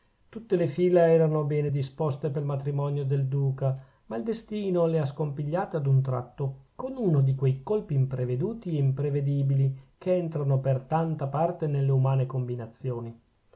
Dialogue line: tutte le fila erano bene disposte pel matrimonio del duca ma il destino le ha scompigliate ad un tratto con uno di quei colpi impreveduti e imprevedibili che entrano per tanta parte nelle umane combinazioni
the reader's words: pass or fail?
pass